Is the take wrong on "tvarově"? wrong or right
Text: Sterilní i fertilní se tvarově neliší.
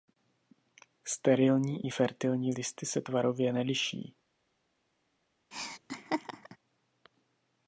right